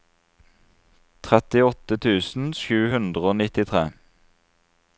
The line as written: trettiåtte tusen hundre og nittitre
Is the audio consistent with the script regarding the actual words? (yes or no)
no